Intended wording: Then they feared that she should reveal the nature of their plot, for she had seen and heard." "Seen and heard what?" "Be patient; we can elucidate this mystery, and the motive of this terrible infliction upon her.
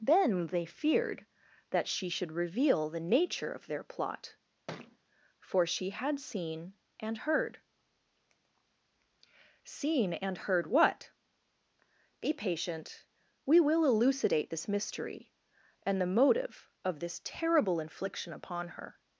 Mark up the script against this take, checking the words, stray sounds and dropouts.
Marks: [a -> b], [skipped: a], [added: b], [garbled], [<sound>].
Then they feared that she should reveal the nature of their plot, [thud] for she had seen and heard." "Seen and heard what?" "Be patient; we [can -> will] elucidate this mystery, and the motive of this terrible infliction upon her.